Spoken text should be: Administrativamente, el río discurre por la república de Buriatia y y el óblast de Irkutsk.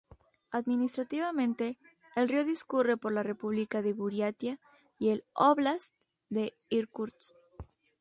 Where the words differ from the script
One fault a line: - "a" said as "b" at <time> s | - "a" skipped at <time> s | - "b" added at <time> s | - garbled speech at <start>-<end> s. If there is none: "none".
- "y" skipped at 5.1 s